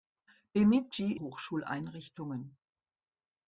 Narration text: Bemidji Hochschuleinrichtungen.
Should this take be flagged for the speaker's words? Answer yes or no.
no